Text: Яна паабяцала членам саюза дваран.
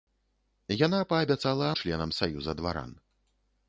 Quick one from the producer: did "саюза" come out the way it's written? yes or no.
yes